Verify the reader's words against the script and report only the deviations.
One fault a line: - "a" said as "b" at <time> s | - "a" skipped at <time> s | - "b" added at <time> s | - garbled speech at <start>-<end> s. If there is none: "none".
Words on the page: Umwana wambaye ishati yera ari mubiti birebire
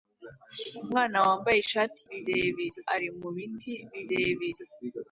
- "yera" said as "birebire" at 2.1 s